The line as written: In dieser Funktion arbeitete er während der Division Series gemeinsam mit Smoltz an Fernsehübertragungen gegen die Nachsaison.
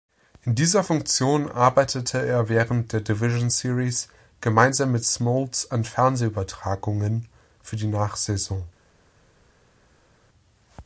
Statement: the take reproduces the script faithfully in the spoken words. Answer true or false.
false